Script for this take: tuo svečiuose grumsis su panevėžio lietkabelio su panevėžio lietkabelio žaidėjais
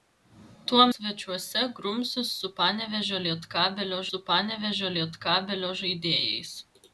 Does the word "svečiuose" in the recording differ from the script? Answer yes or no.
no